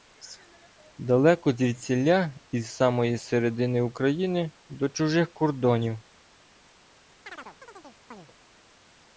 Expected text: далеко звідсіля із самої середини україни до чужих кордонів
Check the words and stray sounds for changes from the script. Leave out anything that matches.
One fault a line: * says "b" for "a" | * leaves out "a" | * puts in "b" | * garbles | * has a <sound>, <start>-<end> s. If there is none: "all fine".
* has a chirp, 7.2-8.3 s